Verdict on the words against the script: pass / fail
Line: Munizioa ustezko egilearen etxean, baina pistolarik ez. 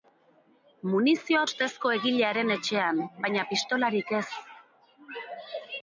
pass